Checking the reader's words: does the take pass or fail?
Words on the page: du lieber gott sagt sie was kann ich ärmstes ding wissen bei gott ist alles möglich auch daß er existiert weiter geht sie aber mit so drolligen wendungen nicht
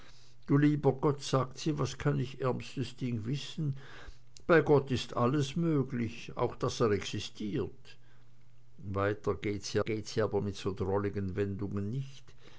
fail